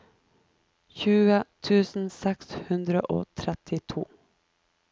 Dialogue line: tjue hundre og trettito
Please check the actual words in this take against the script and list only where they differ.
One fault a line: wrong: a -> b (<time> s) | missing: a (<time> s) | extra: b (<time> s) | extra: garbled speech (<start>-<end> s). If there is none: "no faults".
extra: tusen seks (1.7 s)